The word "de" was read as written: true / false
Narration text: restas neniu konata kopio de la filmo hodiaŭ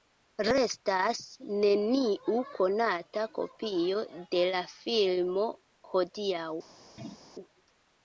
true